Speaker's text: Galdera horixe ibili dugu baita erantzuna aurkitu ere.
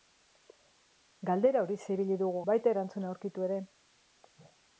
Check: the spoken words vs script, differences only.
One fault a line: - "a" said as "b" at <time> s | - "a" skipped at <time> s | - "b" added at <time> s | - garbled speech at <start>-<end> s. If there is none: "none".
none